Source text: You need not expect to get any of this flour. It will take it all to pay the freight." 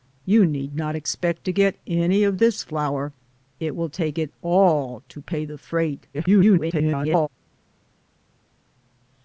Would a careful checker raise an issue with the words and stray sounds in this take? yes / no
yes